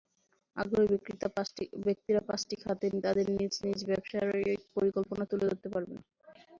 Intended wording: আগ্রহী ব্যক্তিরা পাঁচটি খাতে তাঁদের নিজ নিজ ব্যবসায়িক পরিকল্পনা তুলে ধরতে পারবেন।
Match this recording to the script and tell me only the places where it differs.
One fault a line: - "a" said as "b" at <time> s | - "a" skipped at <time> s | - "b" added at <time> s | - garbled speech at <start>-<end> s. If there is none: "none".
none